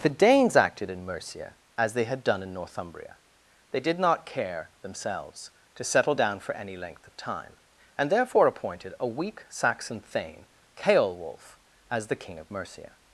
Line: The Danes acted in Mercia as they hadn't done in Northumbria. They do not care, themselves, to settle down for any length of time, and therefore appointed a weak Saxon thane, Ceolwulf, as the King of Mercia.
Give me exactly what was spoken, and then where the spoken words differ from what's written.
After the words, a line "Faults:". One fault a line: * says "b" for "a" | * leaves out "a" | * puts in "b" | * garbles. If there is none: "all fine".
The Danes acted in Mercia as they had done in Northumbria. They did not care, themselves, to settle down for any length of time, and therefore appointed a weak Saxon thane, Ceolwulf, as the King of Mercia.
Faults:
* says "had" for "hadn't"
* says "did" for "do"